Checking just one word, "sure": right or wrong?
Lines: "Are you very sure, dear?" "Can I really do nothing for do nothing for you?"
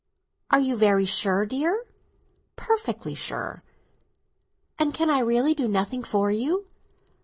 right